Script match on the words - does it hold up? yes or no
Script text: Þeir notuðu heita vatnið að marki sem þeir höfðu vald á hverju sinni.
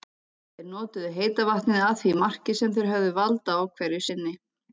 no